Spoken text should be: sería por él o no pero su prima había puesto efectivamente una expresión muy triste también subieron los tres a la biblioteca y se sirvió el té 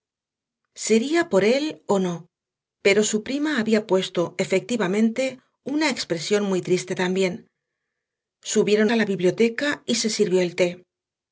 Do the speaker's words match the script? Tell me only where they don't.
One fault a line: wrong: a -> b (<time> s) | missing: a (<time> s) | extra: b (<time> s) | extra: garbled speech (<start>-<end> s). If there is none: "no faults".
missing: los tres (8.9 s)